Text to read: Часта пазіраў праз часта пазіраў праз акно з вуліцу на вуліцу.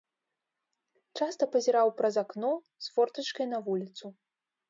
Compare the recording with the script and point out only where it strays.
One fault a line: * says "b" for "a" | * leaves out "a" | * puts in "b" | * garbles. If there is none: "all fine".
* leaves out "часта пазіраў праз"
* says "фортачкай" for "вуліцу"